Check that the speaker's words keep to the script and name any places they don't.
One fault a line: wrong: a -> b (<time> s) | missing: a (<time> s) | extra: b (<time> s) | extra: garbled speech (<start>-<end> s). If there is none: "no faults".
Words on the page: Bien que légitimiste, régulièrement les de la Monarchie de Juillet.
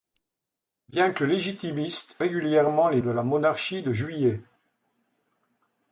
no faults